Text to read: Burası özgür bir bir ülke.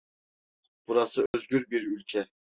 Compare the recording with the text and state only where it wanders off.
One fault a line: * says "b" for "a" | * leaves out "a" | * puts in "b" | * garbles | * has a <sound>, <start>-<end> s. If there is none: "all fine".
* has a dropout, 1.3-1.3 s
* leaves out "bir"